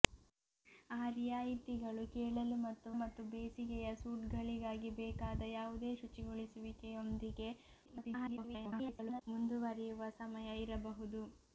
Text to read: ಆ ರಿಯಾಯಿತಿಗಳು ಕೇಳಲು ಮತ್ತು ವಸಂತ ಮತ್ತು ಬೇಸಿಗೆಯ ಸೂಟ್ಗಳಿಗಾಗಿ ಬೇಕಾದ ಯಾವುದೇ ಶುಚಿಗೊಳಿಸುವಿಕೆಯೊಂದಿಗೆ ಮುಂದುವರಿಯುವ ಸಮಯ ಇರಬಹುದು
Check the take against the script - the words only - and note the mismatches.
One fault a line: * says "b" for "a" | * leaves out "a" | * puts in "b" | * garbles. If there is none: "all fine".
* leaves out "ವಸಂತ"
* garbles